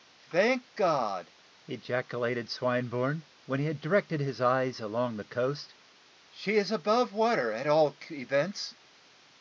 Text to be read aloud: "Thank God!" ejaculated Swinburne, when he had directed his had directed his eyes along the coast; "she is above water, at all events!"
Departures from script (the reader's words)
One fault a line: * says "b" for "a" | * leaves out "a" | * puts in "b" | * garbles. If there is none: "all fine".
* leaves out "had directed his"